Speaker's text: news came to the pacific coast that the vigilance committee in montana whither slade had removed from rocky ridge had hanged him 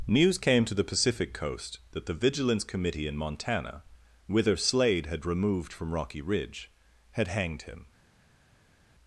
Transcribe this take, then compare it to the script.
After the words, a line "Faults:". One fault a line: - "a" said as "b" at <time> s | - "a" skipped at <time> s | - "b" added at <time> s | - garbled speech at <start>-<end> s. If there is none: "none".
news came to the pacific coast that the vigilance committee in montana whither slade had removed from rocky ridge had hanged him
Faults:
none